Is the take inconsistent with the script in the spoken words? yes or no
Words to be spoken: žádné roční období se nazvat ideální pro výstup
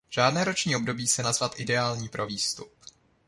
no